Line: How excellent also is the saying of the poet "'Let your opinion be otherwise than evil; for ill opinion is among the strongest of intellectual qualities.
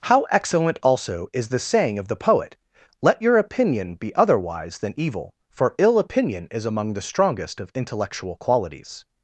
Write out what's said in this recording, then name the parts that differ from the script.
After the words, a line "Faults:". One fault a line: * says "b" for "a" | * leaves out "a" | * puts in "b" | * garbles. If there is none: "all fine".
How excellent also is the saying of the poet "'Let your opinion be otherwise than evil; for ill opinion is among the strongest of intellectual qualities.
Faults:
all fine